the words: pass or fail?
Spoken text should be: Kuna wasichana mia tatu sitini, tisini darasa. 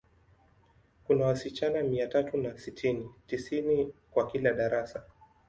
fail